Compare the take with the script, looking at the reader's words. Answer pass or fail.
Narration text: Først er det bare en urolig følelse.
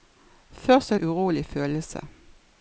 fail